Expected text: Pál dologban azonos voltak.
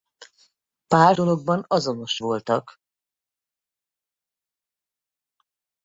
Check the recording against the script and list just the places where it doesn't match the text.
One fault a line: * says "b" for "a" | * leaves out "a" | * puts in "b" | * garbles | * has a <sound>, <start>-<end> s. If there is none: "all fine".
all fine